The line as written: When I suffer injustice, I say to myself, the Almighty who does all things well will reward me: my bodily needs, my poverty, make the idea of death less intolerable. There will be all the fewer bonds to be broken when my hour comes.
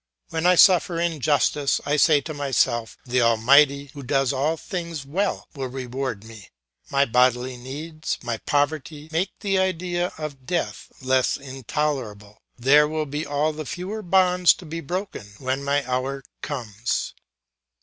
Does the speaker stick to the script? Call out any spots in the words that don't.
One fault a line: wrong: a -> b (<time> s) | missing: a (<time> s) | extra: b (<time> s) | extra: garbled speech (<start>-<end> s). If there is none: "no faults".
no faults